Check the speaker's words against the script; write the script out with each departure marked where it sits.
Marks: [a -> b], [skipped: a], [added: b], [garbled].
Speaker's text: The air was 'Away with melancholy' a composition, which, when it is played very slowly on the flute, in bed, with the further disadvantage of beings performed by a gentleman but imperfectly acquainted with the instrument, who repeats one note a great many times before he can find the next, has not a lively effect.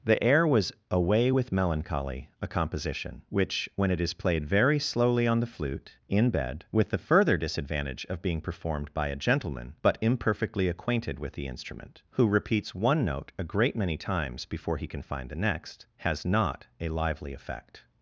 The air was 'Away with melancholy' a composition, which, when it is played very slowly on the flute, in bed, with the further disadvantage of [beings -> being] performed by a gentleman but imperfectly acquainted with the instrument, who repeats one note a great many times before he can find the next, has not a lively effect.